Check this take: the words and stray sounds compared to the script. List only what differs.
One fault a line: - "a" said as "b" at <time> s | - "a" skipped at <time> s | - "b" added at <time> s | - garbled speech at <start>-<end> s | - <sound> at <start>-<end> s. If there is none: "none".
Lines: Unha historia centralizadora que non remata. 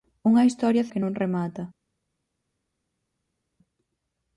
- "centralizadora" skipped at 0.9 s